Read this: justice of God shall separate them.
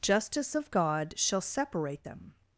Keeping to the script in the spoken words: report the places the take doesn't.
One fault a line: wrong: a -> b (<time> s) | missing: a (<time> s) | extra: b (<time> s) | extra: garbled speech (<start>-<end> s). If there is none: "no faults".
no faults